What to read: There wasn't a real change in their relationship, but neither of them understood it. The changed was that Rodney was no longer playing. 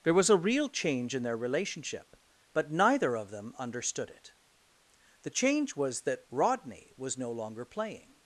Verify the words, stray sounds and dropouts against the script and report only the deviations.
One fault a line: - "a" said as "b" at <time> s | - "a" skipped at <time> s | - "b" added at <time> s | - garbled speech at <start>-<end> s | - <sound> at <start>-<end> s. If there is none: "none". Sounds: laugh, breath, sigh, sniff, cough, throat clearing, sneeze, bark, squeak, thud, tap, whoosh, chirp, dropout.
- "wasn't" said as "was" at 0.1 s
- "changed" said as "change" at 5.3 s